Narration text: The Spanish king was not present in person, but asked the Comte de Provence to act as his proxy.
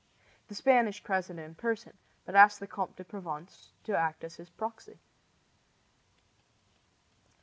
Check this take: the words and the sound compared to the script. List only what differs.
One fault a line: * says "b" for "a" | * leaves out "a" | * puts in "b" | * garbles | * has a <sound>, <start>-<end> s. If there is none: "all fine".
* leaves out "king was not"